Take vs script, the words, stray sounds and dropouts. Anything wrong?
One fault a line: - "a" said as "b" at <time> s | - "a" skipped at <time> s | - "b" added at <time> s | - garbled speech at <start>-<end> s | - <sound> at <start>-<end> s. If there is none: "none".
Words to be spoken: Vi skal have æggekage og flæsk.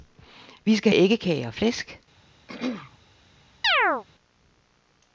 - "have" skipped at 0.9 s
- throat clearing at 2.5-3.0 s
- chirp at 3.6-4.0 s